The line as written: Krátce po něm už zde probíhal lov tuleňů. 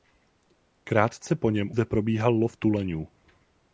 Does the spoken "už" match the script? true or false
false